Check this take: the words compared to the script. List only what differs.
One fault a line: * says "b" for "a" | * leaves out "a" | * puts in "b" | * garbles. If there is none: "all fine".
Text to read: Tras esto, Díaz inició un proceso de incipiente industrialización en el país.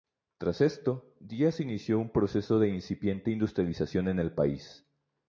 all fine